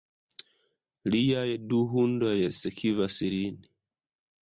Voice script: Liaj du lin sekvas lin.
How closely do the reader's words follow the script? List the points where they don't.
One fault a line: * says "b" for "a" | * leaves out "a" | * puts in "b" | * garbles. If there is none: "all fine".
* says "hundoj" for "lin"